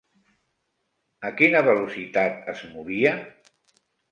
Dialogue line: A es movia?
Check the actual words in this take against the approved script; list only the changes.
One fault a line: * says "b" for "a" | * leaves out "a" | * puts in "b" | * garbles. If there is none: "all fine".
* puts in "quina velocitat"